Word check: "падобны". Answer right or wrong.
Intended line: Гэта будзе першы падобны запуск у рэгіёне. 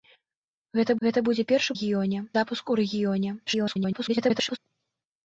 wrong